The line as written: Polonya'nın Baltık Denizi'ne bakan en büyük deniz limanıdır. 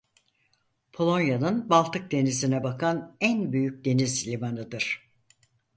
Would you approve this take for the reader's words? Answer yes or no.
yes